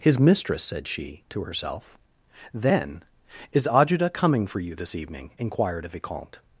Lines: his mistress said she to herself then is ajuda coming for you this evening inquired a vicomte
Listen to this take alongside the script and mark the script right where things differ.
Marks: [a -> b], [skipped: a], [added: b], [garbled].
his mistress said she to herself then is ajuda coming for you this evening inquired a vicomte